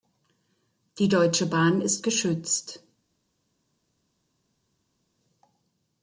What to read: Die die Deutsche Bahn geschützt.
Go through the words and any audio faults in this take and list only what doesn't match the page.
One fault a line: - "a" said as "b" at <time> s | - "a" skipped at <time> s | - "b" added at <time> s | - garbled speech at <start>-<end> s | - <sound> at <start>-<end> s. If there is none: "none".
- "die" skipped at 1.1 s
- "ist" added at 1.8 s